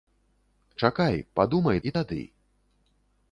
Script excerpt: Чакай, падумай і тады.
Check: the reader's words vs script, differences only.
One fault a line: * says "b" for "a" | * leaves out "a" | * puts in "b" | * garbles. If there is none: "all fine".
all fine